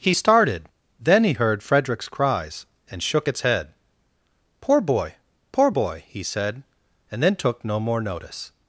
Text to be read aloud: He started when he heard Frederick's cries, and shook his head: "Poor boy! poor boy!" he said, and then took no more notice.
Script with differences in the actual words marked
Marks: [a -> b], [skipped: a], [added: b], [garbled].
He started [when -> then] he heard Frederick's cries, and shook [his -> its] head: "Poor boy! poor boy!" he said, and then took no more notice.